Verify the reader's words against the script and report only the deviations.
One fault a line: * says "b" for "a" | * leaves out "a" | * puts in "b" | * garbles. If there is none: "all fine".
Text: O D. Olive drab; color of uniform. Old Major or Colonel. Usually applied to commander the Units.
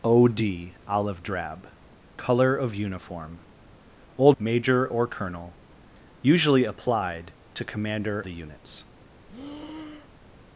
all fine